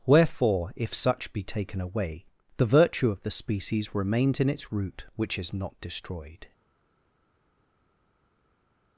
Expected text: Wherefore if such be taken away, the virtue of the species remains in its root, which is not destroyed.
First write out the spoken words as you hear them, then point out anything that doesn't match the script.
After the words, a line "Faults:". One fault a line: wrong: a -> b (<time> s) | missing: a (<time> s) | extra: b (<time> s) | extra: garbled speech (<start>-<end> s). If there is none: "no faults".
Wherefore if such be taken away, the virtue of the species remains in its root, which is not destroyed.
Faults:
no faults